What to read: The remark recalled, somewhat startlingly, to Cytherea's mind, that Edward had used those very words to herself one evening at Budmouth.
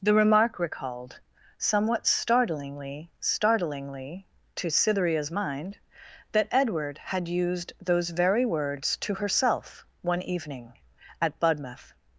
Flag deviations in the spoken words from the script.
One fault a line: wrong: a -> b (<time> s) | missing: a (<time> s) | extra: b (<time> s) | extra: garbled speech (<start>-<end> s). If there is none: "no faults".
extra: startlingly (3.2 s)